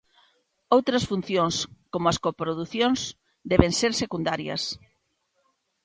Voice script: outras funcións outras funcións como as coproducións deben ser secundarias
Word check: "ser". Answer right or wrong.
right